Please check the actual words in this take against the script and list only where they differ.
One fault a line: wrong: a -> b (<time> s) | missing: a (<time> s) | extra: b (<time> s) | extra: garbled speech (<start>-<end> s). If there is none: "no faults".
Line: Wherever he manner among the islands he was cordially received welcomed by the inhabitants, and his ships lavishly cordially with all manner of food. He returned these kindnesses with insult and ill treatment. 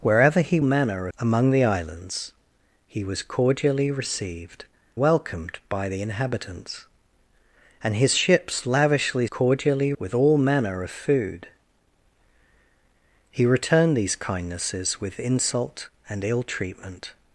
no faults